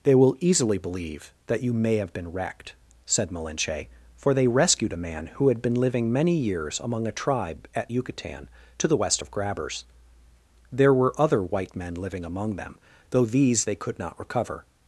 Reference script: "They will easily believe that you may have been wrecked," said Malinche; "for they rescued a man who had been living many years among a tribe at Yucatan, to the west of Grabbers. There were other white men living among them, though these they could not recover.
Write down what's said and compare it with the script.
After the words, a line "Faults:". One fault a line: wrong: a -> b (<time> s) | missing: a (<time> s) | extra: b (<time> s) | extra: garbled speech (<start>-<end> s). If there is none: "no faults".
"They will easily believe that you may have been wrecked," said Malinche; "for they rescued a man who had been living many years among a tribe at Yucatan, to the west of Grabbers. There were other white men living among them, though these they could not recover.
Faults:
no faults